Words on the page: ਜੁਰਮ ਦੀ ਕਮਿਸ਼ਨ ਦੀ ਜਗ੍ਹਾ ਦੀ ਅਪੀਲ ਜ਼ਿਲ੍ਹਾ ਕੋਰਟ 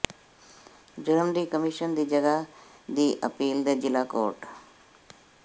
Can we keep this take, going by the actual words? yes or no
no